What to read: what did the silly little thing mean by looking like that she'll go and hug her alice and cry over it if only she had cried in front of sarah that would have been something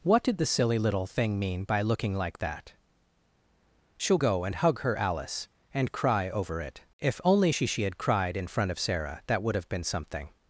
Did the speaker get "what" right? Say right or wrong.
right